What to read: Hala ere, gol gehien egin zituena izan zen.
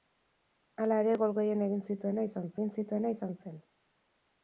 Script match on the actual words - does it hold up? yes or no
no